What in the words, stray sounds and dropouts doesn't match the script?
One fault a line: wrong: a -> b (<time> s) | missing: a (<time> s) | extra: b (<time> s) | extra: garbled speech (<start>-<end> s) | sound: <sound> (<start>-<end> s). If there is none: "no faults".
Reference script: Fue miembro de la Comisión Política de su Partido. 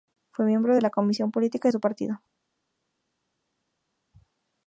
no faults